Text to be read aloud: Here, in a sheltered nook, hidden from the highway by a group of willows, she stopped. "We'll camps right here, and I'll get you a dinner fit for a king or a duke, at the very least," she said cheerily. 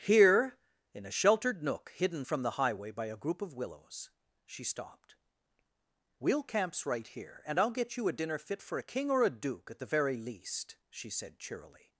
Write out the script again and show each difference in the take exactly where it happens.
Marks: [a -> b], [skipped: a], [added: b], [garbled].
Here, in a sheltered nook, hidden from the highway by a group of willows, she stopped. "We'll camps right here, and I'll get you a dinner fit for a king or a duke, at the very least," she said cheerily.